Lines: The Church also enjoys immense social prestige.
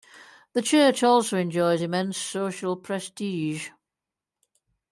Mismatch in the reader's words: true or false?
false